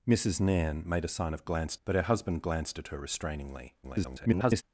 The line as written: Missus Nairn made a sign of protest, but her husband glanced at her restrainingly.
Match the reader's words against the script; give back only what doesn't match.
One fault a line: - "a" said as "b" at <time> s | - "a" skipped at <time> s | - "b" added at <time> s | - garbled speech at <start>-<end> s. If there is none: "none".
- "protest" said as "glanced" at 1.4 s
- garbled speech at 3.8-4.6 s